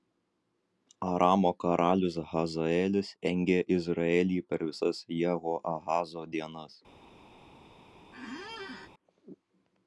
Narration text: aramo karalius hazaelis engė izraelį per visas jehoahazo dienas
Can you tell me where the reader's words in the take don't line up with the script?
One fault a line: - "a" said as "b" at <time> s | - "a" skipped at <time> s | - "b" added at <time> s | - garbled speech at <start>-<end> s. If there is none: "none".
none